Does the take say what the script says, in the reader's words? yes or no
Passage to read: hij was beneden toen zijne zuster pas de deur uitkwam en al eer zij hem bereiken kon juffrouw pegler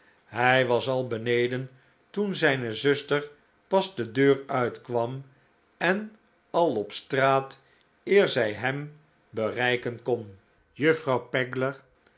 no